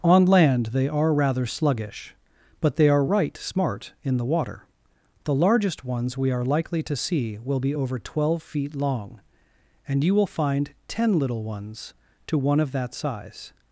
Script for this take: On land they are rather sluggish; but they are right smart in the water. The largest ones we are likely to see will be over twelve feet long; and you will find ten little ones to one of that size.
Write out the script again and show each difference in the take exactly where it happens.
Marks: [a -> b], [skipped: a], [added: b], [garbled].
On land they are rather sluggish; but they are right smart in the water. The largest ones we are likely to see will be over twelve feet long; and you will find ten little ones to one of that size.